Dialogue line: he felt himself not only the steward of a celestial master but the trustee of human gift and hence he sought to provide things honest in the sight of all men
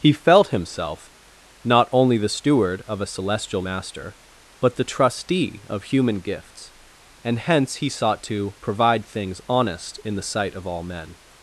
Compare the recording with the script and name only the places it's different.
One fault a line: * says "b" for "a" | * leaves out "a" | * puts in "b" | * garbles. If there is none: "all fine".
* says "gifts" for "gift"